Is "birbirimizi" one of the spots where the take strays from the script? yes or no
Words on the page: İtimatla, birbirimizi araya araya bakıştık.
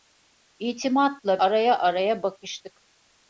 yes